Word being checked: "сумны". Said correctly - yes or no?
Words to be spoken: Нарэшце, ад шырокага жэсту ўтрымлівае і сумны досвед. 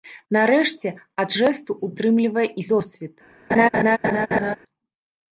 no